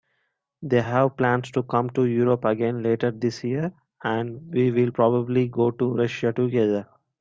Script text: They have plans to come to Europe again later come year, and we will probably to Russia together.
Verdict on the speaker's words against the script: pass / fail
fail